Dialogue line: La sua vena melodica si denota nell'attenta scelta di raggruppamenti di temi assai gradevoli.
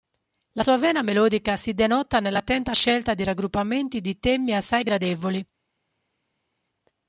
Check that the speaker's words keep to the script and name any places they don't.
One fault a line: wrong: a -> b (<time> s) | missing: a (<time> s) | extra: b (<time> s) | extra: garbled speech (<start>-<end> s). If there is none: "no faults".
no faults